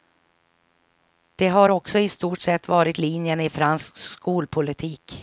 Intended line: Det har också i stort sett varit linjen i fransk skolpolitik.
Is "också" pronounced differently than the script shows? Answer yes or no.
no